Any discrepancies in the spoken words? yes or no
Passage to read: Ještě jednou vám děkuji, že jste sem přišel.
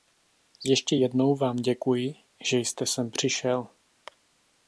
no